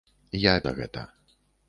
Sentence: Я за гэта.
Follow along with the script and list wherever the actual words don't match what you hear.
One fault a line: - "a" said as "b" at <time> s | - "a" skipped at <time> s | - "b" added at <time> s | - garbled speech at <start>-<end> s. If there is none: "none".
none